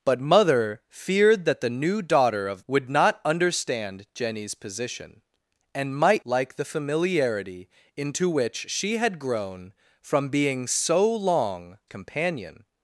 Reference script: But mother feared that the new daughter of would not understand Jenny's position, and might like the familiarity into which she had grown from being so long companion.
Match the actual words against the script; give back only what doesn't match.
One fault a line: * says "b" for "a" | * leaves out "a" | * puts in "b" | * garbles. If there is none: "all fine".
all fine